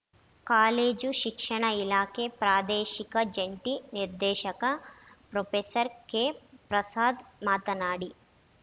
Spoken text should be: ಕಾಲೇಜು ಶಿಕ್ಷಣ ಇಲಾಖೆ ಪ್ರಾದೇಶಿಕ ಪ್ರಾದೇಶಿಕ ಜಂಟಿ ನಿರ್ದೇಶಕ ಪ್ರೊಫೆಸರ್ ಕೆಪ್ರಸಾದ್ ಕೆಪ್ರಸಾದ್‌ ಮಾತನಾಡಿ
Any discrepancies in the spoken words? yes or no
yes